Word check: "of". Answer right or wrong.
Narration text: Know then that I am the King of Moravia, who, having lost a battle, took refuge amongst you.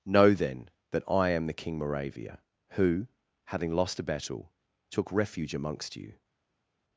wrong